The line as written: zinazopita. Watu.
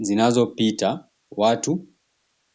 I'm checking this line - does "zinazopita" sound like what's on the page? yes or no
yes